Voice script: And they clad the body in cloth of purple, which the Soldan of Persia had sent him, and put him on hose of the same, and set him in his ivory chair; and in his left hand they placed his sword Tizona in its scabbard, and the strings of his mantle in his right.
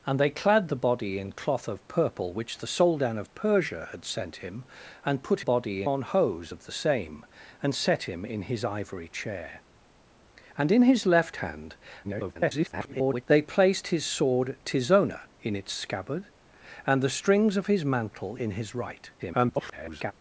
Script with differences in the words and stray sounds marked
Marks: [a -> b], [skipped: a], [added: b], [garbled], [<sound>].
And they clad the body in cloth of purple, which the Soldan of Persia had sent him, and put [him -> body] on hose of the same, and set him in his ivory chair; and in his left hand [garbled] they placed his sword Tizona in its scabbard, and the strings of his mantle in his right. [garbled]